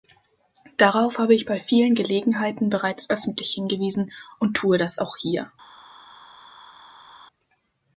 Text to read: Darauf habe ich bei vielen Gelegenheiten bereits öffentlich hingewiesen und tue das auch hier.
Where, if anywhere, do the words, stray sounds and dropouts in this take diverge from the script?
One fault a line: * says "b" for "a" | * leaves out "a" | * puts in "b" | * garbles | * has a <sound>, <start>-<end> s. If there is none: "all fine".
all fine